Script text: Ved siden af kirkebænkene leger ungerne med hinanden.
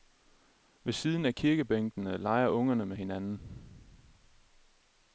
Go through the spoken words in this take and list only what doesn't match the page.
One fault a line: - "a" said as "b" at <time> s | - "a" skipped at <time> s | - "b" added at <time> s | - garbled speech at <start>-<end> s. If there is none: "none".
none